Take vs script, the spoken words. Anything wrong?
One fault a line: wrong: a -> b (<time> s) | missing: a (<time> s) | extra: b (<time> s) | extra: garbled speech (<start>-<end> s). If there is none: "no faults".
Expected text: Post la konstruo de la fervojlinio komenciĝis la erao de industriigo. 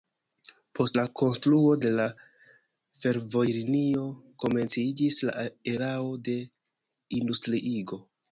no faults